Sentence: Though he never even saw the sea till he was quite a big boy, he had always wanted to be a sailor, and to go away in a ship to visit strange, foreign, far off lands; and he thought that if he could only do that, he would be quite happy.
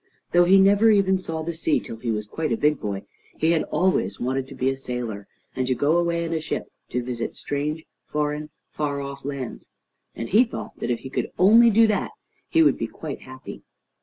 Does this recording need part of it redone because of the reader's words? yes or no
no